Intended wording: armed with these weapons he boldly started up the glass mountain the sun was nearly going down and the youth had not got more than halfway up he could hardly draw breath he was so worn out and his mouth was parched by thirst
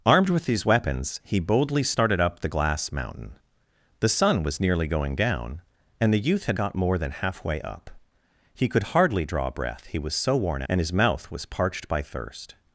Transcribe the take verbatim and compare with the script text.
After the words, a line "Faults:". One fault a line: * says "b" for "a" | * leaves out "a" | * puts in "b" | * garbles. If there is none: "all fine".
armed with these weapons he boldly started up the glass mountain the sun was nearly going down and the youth had got more than halfway up he could hardly draw breath he was so worn and his mouth was parched by thirst
Faults:
* leaves out "not"
* leaves out "out"